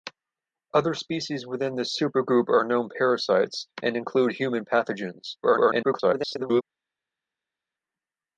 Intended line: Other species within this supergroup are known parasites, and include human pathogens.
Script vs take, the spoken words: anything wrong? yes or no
yes